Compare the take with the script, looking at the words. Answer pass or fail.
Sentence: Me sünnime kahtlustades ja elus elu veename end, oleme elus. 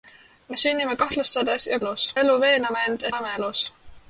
pass